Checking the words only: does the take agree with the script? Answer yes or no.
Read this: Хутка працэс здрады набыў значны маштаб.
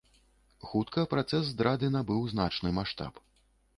yes